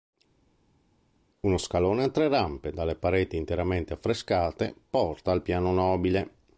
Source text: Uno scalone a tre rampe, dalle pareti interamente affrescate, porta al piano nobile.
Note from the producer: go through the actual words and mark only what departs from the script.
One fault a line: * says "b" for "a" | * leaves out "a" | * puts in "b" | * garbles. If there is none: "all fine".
all fine